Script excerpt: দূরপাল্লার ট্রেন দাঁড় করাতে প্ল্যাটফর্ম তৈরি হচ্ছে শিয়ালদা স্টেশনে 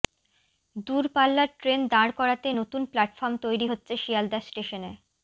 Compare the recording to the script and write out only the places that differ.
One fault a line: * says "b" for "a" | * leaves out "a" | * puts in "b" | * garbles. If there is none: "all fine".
* puts in "নতুন"